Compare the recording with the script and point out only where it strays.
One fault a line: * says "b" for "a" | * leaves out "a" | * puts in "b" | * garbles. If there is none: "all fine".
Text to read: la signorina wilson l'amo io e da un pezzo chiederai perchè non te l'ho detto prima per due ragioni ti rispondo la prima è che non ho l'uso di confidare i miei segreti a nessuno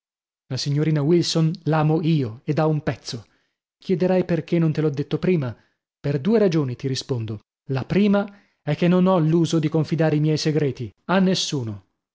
all fine